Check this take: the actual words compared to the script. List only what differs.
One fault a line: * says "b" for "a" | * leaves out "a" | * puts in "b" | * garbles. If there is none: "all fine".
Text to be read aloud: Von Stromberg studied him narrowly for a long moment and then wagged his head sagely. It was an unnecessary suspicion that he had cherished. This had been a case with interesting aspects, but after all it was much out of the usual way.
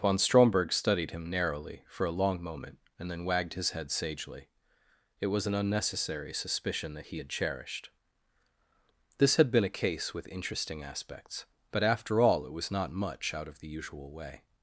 * puts in "not"